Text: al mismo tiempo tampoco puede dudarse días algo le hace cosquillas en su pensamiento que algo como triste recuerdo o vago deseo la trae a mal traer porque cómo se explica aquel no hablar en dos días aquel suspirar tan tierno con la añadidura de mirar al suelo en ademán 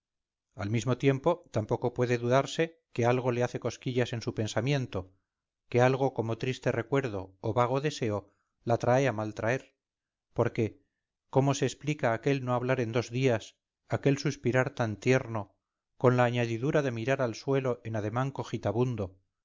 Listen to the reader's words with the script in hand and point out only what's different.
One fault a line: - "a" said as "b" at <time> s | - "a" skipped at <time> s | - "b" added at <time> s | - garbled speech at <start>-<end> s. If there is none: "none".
- "días" said as "que" at 2.9 s